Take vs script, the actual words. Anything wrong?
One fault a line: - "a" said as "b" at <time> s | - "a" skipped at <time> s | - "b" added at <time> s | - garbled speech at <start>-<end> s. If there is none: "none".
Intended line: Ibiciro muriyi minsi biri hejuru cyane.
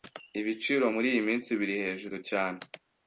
none